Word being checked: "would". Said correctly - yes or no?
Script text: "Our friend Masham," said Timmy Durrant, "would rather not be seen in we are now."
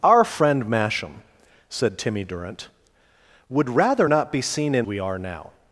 yes